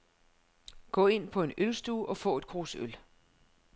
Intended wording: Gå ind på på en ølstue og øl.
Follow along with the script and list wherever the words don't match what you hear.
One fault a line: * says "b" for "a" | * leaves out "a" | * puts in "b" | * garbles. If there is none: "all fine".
* leaves out "på"
* puts in "få et krus"